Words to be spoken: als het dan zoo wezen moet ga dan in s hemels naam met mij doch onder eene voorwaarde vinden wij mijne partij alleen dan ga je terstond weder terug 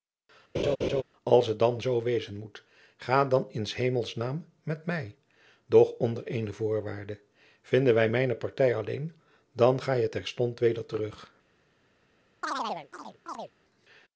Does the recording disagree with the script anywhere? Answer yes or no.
no